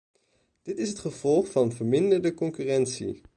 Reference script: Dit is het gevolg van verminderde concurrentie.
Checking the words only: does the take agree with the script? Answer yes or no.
yes